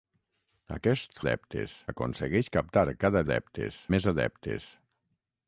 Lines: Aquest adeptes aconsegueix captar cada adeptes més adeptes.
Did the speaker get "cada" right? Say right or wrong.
right